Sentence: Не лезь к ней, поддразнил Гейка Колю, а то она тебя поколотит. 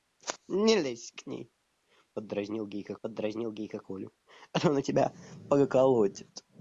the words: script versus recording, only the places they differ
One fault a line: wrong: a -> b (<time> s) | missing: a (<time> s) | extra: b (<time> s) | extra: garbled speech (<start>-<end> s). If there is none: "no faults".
extra: поддразнил Гейка (3.0 s)